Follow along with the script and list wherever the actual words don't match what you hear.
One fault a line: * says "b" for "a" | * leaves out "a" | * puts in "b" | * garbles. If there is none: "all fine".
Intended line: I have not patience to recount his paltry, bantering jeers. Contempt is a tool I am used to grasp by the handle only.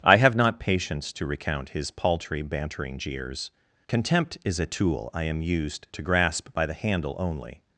all fine